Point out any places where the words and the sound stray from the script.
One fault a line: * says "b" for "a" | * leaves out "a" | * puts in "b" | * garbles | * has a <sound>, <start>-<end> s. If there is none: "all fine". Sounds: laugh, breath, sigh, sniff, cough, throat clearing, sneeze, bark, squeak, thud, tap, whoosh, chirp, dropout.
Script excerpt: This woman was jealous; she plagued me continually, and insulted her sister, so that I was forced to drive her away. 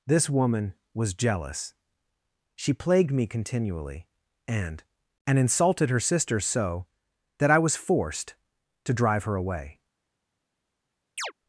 * puts in "and"
* has a chirp, 11.2-11.3 s